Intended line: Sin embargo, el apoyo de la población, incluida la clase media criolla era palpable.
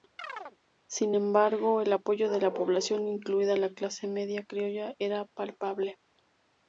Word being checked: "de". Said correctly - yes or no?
yes